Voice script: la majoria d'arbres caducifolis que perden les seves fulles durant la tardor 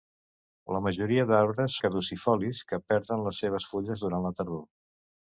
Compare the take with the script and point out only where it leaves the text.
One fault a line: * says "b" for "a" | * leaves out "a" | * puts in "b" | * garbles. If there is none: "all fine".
all fine